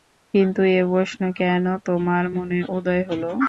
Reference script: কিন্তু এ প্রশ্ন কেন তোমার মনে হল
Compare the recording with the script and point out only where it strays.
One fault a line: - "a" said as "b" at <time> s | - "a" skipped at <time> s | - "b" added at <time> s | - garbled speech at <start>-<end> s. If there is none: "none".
- "উদয়" added at 2.7 s